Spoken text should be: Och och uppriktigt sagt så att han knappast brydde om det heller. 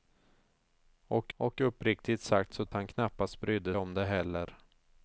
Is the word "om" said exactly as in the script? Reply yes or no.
yes